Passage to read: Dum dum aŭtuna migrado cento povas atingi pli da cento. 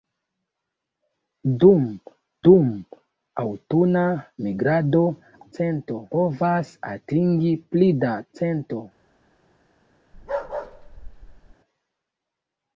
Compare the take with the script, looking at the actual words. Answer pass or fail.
pass